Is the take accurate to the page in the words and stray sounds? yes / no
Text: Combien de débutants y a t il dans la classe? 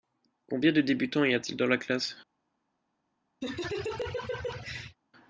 no